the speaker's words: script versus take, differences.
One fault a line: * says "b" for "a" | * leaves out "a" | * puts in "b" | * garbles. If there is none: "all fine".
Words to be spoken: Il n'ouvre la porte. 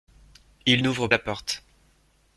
all fine